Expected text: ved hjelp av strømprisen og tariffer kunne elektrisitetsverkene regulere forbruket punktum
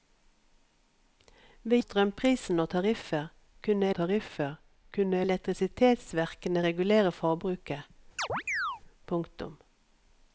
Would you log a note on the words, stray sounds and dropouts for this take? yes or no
yes